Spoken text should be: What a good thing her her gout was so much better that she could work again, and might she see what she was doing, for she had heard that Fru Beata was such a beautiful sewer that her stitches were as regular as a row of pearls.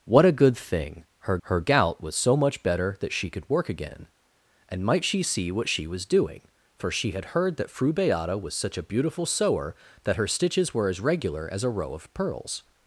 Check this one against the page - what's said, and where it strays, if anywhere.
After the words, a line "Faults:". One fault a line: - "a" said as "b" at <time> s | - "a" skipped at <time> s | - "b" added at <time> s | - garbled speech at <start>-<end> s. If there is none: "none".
What a good thing her her gout was so much better that she could work again, and might she see what she was doing, for she had heard that Fru Beata was such a beautiful sewer that her stitches were as regular as a row of pearls.
Faults:
none